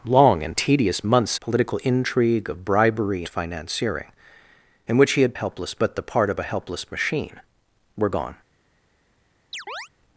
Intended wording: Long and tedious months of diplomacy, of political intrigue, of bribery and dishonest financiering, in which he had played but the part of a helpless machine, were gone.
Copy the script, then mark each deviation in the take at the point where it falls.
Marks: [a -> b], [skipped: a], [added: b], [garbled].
Long and tedious months [skipped: of diplomacy, of] political intrigue, of bribery [skipped: and dishonest] financiering, in which he had [played -> helpless] but the part of a helpless machine, were gone.